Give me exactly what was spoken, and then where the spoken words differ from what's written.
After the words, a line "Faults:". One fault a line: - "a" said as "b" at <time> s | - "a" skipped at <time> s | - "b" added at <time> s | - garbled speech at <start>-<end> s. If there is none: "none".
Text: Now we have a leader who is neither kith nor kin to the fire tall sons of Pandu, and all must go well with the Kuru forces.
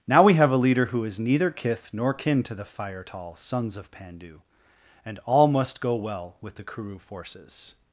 Now we have a leader who is neither kith nor kin to the fire tall sons of Pandu, and all must go well with the Kuru forces.
Faults:
none